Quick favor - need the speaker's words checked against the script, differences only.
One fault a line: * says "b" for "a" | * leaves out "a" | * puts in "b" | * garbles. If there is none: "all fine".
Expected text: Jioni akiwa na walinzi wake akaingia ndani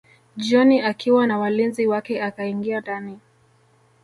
all fine